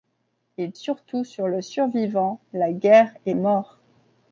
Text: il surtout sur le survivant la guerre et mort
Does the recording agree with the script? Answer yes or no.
yes